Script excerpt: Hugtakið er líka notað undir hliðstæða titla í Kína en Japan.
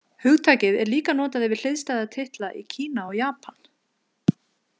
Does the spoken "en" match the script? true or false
false